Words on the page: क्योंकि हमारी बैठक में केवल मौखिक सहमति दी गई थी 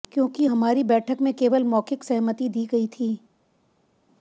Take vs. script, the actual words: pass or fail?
pass